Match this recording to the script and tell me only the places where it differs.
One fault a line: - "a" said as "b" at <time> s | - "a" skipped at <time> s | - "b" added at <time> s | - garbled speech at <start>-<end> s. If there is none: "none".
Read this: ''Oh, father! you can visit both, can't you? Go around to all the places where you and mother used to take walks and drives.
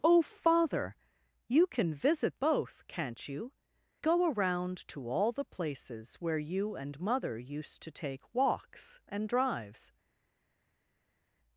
none